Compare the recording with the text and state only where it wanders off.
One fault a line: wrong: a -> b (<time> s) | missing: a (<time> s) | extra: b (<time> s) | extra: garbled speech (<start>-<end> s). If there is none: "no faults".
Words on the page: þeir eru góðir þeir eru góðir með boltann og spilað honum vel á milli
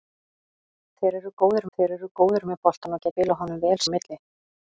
no faults